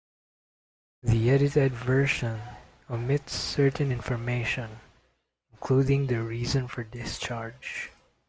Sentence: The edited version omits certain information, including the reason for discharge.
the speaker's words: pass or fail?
pass